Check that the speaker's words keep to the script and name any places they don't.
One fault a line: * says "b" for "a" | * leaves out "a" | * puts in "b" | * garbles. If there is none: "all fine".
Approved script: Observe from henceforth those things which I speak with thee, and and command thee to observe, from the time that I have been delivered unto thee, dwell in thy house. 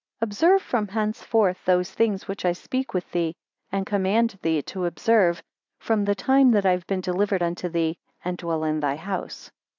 * leaves out "and"
* puts in "and"